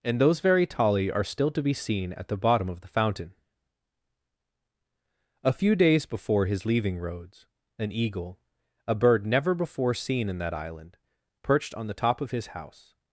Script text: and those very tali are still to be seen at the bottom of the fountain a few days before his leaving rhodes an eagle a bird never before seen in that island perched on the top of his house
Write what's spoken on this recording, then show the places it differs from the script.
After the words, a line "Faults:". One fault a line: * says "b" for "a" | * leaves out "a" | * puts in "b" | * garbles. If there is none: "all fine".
and those very tali are still to be seen at the bottom of the fountain a few days before his leaving rhodes an eagle a bird never before seen in that island perched on the top of his house
Faults:
all fine